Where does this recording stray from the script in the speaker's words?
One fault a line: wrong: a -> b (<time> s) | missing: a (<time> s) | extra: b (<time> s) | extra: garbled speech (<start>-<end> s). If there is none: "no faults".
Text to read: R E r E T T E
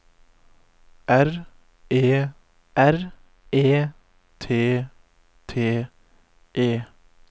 no faults